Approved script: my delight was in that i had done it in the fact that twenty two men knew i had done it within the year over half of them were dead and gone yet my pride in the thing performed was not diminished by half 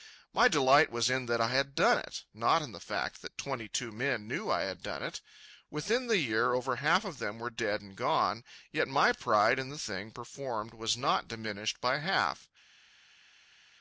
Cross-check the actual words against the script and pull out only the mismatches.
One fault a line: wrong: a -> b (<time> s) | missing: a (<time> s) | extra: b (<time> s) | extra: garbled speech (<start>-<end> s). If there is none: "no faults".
extra: not (2.3 s)